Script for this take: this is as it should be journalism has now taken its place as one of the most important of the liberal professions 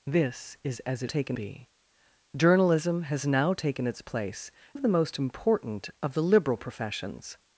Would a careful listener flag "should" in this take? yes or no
yes